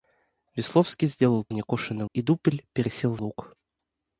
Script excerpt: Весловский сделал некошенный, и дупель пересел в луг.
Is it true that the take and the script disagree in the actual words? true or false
false